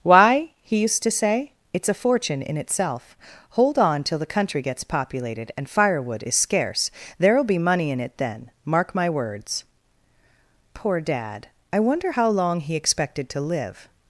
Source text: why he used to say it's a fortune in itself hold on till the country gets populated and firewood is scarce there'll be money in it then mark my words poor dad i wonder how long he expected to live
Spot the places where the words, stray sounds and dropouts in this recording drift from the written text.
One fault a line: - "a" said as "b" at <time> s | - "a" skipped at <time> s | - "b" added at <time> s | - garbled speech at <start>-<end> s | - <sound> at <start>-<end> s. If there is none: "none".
none